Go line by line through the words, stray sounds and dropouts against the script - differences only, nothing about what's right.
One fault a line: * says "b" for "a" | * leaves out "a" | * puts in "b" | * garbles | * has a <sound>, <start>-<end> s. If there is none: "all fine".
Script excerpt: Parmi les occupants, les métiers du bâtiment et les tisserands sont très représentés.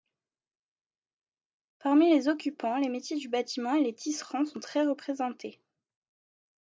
all fine